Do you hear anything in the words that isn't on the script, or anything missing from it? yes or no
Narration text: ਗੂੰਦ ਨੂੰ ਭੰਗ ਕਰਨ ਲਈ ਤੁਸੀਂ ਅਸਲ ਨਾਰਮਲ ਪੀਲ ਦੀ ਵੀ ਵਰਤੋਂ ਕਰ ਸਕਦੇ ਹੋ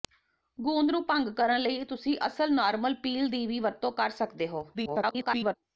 yes